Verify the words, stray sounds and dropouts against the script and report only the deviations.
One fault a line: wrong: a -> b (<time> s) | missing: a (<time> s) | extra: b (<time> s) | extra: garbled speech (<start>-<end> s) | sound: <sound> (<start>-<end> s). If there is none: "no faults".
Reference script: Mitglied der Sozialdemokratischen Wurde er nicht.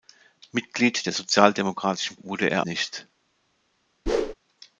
sound: whoosh (4.1-4.3 s)